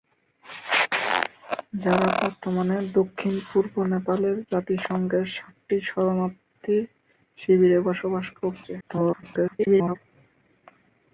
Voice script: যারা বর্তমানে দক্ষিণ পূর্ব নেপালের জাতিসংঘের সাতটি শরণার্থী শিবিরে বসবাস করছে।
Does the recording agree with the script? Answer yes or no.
no